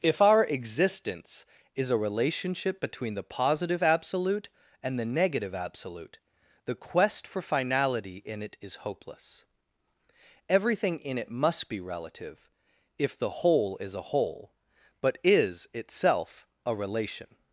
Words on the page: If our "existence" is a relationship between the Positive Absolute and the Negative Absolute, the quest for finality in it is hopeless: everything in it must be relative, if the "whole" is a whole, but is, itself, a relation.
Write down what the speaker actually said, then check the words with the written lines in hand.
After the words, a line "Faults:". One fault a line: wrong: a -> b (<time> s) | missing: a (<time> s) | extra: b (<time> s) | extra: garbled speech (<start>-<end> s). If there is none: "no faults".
If our "existence" is a relationship between the Positive Absolute and the Negative Absolute, the quest for finality in it is hopeless: everything in it must be relative, if the "whole" is a whole, but is, itself, a relation.
Faults:
no faults